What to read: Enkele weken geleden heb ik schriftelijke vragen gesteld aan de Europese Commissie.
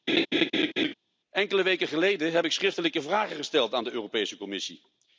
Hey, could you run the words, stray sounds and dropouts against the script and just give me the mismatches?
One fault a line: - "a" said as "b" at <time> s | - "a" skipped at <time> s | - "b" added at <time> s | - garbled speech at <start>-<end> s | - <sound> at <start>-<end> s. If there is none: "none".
- laugh at 0.1-0.9 s